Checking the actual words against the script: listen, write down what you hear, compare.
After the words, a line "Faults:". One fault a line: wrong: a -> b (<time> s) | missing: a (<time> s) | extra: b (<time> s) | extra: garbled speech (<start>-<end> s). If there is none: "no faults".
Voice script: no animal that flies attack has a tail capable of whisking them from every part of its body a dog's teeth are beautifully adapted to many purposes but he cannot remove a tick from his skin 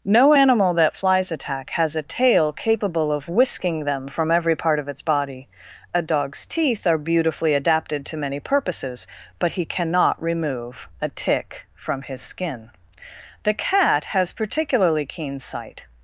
no animal that flies attack has a tail capable of whisking them from every part of its body a dog's teeth are beautifully adapted to many purposes but he cannot remove a tick from his skin the cat has particularly keen sight
Faults:
extra: the cat has particularly keen sight (13.4 s)